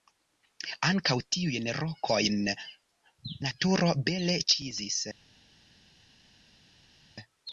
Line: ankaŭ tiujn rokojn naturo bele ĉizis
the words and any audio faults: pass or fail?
pass